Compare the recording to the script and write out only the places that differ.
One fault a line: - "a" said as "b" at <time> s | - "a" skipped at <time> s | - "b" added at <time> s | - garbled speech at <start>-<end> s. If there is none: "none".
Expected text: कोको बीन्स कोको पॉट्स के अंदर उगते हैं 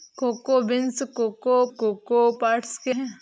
- "कोको" added at 1.8 s
- "अंदर उगते" skipped at 2.9 s